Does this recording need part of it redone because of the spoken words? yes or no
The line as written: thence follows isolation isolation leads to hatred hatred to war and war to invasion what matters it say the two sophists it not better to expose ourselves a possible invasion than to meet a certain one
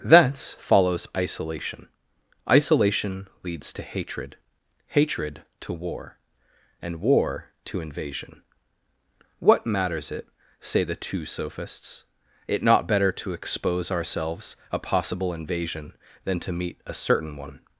no